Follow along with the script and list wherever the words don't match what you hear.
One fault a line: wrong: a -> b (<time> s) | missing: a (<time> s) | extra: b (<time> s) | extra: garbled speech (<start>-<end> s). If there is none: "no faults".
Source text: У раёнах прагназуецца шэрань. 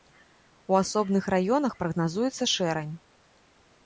extra: асобных (0.8 s)